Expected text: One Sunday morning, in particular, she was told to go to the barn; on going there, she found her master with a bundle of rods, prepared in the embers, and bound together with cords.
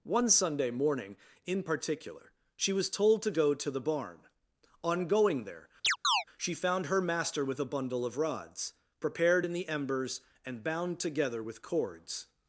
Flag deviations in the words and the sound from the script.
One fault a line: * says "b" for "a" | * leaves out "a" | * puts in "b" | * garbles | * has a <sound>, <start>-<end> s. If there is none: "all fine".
* has a chirp, 5.8-6.2 s